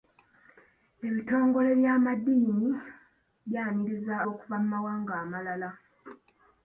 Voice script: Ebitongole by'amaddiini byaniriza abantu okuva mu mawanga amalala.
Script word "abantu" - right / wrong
wrong